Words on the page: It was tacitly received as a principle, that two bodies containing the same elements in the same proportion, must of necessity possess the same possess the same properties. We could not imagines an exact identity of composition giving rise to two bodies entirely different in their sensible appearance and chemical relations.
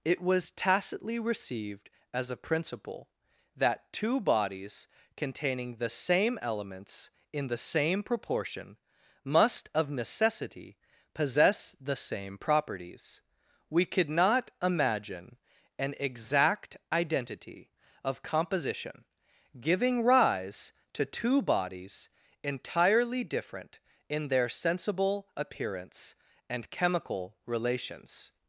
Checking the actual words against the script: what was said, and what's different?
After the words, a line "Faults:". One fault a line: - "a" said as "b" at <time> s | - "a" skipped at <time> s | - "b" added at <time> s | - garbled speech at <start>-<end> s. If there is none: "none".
It was tacitly received as a principle, that two bodies containing the same elements in the same proportion, must of necessity possess the same properties. We could not imagine an exact identity of composition giving rise to two bodies entirely different in their sensible appearance and chemical relations.
Faults:
- "possess the same" skipped at 12.4 s
- "imagines" said as "imagine" at 14.6 s